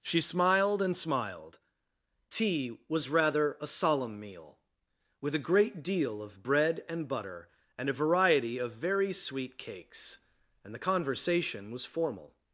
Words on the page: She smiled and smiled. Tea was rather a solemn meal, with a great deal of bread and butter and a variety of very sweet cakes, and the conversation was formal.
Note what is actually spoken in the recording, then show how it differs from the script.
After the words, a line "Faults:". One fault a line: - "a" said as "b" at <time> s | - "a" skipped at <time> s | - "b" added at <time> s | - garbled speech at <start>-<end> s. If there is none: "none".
She smiled and smiled. Tea was rather a solemn meal, with a great deal of bread and butter and a variety of very sweet cakes, and the conversation was formal.
Faults:
none